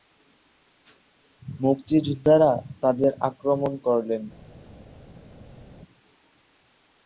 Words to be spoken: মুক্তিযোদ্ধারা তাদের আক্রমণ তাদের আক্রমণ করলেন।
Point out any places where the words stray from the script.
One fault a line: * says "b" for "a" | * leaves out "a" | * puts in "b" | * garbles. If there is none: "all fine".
* leaves out "তাদের আক্রমণ"